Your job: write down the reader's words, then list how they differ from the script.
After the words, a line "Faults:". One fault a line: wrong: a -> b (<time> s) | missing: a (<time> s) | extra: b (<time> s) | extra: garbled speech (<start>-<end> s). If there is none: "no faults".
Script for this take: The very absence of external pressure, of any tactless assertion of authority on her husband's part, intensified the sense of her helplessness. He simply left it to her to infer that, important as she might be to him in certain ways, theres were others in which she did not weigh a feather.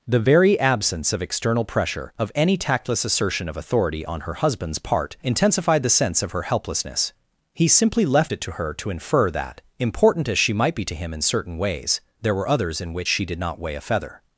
The very absence of external pressure, of any tactless assertion of authority on her husband's part, intensified the sense of her helplessness. He simply left it to her to infer that, important as she might be to him in certain ways, there were others in which she did not weigh a feather.
Faults:
wrong: theres -> there (12.2 s)